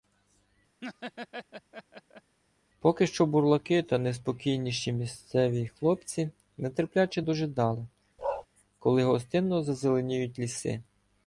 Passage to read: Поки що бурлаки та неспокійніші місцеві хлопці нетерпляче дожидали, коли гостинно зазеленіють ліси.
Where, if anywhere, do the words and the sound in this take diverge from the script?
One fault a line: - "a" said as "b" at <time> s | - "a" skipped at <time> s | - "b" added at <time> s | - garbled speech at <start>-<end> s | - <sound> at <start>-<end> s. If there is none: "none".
- laugh at 0.8-2.4 s
- bark at 8.2-8.5 s